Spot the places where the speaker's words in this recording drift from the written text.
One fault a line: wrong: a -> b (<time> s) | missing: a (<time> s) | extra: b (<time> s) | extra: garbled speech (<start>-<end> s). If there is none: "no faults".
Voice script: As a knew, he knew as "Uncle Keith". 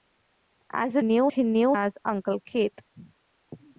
no faults